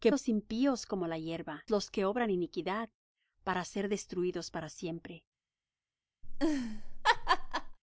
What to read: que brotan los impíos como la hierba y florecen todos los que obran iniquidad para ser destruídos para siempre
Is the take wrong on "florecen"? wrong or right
wrong